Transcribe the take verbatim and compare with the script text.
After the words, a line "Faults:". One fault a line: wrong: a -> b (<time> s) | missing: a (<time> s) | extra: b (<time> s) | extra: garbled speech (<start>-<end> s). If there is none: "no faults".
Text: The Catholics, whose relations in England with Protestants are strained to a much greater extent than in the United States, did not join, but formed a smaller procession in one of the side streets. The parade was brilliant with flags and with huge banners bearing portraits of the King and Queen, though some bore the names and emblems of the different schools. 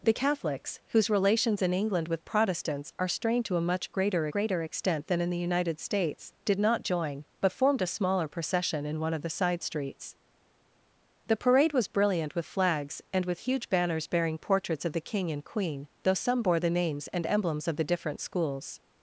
The Catholics, whose relations in England with Protestants are strained to a much greater greater extent than in the United States, did not join, but formed a smaller procession in one of the side streets. The parade was brilliant with flags and with huge banners bearing portraits of the King and Queen, though some bore the names and emblems of the different schools.
Faults:
extra: greater (4.3 s)